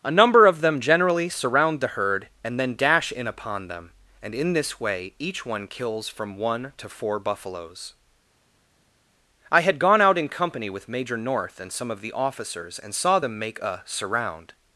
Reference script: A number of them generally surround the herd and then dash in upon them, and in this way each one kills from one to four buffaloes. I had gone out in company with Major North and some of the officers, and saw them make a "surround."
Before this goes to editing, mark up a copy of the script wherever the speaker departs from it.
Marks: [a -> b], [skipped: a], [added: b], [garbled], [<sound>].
A number of them generally surround the herd and then dash in upon them, and in this way each one kills from one to four buffaloes. I had gone out in company with Major North and some of the officers, and saw them make a "surround."